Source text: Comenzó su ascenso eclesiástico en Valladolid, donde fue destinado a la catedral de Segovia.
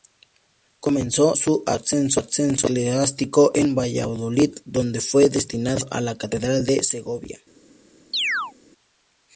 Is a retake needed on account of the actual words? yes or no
no